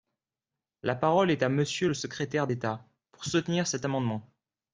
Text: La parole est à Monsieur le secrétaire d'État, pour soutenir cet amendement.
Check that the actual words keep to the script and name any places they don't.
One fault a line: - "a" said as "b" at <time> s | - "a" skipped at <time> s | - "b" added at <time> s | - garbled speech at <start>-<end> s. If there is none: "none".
none